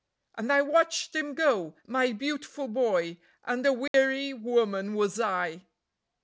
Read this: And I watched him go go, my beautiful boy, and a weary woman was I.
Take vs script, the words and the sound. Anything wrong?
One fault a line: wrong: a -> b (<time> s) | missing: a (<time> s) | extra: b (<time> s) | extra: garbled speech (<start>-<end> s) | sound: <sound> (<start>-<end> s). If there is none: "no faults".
missing: go (1.8 s)
sound: dropout (3.9-3.9 s)